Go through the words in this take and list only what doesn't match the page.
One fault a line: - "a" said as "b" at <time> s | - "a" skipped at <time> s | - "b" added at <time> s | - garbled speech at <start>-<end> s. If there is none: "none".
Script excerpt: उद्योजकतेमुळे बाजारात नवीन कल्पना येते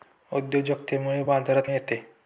- "नवीन कल्पना" skipped at 1.7 s